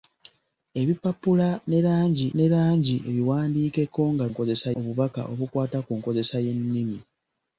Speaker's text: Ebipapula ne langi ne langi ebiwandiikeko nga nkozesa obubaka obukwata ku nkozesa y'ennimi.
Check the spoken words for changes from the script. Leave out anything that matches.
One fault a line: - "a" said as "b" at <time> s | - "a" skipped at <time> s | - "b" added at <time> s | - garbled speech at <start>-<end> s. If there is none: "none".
none